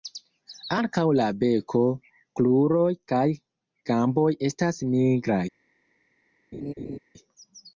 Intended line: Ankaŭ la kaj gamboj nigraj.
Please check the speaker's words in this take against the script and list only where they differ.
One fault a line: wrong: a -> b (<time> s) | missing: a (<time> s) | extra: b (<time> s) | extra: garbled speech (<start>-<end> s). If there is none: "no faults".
extra: beko kruroj (1.4 s)
extra: estas (4.5 s)